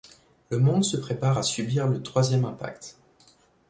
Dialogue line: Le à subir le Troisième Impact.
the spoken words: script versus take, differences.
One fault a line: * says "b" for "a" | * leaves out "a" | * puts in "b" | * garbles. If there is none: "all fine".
* puts in "monde se prépare"